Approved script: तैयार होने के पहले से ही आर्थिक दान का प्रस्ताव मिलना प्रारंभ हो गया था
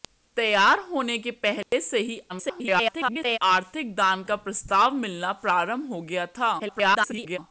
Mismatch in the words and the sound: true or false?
true